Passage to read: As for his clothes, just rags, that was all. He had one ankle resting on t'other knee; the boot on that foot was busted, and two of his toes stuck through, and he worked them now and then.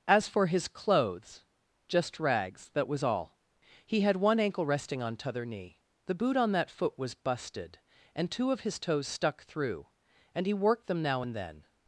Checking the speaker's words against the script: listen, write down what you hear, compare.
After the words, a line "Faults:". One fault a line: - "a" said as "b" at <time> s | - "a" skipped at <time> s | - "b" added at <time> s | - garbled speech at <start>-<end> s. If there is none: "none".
As for his clothes, just rags, that was all. He had one ankle resting on t'other knee; the boot on that foot was busted, and two of his toes stuck through, and he worked them now and then.
Faults:
none